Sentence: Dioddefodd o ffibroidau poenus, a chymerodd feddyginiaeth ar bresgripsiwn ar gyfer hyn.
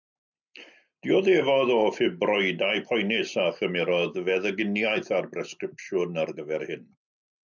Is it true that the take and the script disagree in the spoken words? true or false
false